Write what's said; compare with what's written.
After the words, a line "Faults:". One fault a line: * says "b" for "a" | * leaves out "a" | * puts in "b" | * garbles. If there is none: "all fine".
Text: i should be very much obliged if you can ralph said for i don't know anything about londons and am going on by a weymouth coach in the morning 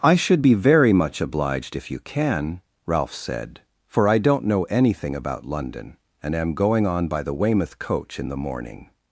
i should be very much obliged if you can ralph said for i don't know anything about london and am going on by the weymouth coach in the morning
Faults:
* says "london" for "londons"
* says "the" for "a"